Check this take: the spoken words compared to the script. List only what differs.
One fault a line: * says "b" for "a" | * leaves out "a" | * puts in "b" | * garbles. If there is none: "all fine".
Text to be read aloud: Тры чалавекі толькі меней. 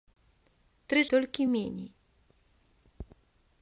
* leaves out "чалавекі"